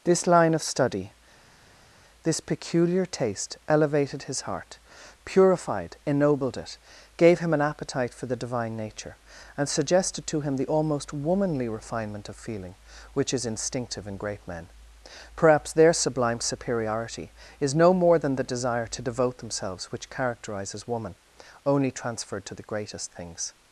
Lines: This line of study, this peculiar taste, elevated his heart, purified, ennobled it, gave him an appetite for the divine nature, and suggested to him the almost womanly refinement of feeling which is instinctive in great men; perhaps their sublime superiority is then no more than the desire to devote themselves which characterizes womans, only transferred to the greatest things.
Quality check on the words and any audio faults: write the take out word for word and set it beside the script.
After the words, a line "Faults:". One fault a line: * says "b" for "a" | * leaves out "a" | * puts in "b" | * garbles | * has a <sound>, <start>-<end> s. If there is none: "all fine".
This line of study, this peculiar taste, elevated his heart, purified, ennobled it, gave him an appetite for the divine nature, and suggested to him the almost womanly refinement of feeling which is instinctive in great men; perhaps their sublime superiority is no more than the desire to devote themselves which characterizes woman, only transferred to the greatest things.
Faults:
* leaves out "then"
* says "woman" for "womans"